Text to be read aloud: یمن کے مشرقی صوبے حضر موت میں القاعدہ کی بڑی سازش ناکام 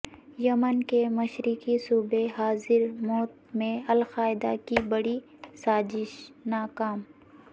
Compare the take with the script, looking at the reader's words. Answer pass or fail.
pass